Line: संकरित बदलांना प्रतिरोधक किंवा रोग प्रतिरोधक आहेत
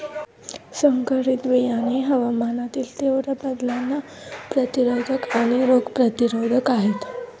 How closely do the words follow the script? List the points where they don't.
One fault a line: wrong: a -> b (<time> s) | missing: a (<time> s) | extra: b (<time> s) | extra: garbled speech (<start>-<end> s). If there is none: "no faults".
extra: बियाणे हवामानातील तीव्र (1.5 s)
wrong: किंवा -> आणि (5.3 s)